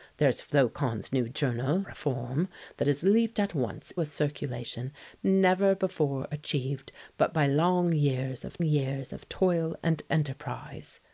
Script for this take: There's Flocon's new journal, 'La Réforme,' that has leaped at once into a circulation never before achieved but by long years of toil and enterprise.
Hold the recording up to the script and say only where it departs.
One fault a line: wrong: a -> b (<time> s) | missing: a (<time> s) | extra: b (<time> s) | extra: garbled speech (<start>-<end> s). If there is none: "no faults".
missing: La (1.8 s)
missing: into (3.9 s)
extra: years of (8.6 s)